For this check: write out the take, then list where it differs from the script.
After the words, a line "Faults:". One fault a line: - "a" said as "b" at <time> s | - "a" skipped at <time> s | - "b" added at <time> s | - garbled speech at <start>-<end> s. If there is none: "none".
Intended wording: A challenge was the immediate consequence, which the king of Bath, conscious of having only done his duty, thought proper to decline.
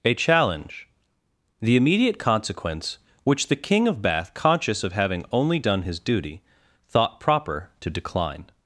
A challenge the immediate consequence, which the king of Bath, conscious of having only done his duty, thought proper to decline.
Faults:
- "was" skipped at 0.9 s